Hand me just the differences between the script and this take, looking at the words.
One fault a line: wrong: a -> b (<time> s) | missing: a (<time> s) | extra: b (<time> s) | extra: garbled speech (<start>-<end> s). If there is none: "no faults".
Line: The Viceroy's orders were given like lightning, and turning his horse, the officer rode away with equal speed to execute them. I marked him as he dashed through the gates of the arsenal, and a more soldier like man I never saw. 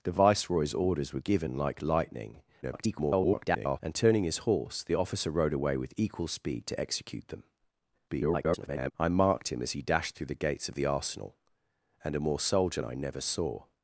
extra: garbled speech (2.6-3.8 s)
extra: garbled speech (8.1-8.9 s)
missing: like man (12.8 s)